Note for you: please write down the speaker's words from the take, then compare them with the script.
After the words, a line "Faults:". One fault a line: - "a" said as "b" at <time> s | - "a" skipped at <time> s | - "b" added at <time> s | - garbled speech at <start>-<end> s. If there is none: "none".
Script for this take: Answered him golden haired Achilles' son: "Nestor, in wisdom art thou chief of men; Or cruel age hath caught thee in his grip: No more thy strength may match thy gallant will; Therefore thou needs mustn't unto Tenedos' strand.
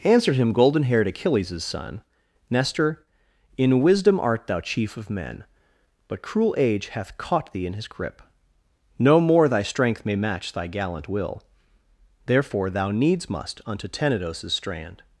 Answered him golden haired Achilles' son: "Nestor, in wisdom art thou chief of men; But cruel age hath caught thee in his grip: No more thy strength may match thy gallant will; Therefore thou needs must unto Tenedos' strand.
Faults:
- "Or" said as "But" at 6.1 s
- "mustn't" said as "must" at 13.3 s